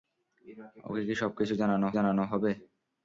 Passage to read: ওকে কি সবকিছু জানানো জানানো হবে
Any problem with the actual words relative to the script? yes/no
no